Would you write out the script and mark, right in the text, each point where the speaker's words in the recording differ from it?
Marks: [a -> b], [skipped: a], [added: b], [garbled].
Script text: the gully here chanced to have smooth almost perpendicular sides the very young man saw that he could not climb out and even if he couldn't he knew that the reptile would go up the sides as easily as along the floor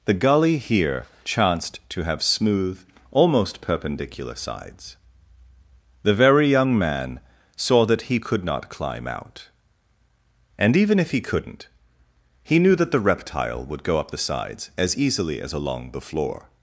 the gully here chanced to have smooth almost perpendicular sides the very young man saw that he could not climb out and even if he couldn't he knew that the reptile would go up the sides as easily as along the floor